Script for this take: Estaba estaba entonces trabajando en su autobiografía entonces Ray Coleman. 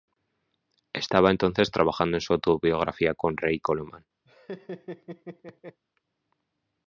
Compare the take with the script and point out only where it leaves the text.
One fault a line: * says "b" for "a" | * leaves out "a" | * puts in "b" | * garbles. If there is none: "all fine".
* leaves out "estaba"
* says "con" for "entonces"